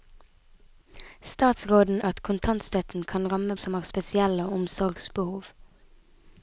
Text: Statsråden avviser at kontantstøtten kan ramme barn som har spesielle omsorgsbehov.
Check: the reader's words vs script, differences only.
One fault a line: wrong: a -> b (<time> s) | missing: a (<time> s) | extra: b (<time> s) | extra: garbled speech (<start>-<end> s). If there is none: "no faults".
missing: avviser (2.0 s)
missing: barn (3.6 s)